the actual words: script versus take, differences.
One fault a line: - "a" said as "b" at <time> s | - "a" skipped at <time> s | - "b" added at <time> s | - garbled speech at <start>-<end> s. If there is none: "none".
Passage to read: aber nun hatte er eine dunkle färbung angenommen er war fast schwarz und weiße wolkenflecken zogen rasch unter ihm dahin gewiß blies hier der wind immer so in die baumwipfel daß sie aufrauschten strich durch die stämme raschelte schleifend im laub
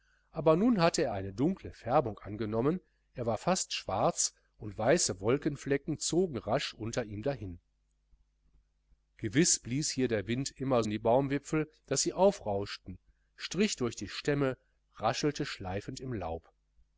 - "so" skipped at 10.8 s